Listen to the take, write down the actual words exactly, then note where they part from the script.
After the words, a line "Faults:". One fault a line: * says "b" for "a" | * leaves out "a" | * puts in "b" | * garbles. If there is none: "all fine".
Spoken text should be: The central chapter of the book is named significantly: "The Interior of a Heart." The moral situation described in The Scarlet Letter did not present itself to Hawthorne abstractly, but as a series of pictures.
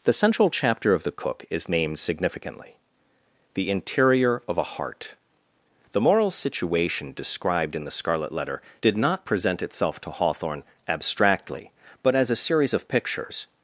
The central chapter of the cook is named significantly: "The Interior of a Heart." The moral situation described in The Scarlet Letter did not present itself to Hawthorne abstractly, but as a series of pictures.
Faults:
* says "cook" for "book"